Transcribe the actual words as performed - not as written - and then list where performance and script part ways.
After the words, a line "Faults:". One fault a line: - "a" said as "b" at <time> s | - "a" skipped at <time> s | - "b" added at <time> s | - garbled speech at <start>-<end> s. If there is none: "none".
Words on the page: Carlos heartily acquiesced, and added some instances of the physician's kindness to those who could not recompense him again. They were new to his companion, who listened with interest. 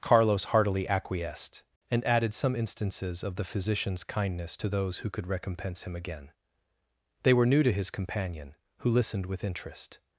Carlos heartily acquiesced, and added some instances of the physician's kindness to those who could recompense him again. They were new to his companion, who listened with interest.
Faults:
- "not" skipped at 5.3 s